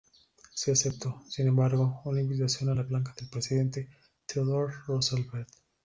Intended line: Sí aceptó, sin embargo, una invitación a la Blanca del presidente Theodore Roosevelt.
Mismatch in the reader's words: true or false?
false